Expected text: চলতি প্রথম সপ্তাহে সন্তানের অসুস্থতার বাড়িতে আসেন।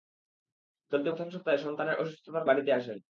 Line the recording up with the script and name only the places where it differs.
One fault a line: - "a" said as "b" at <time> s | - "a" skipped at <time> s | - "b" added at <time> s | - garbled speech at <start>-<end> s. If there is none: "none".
none